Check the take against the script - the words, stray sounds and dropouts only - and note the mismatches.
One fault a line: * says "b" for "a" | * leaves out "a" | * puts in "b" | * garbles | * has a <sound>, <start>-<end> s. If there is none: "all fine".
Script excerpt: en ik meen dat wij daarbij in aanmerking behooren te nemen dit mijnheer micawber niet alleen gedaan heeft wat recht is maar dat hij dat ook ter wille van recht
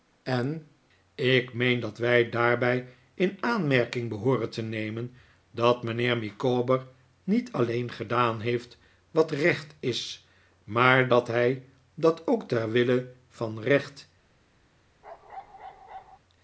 * says "dat" for "dit"
* has a bark, 15.0-16.2 s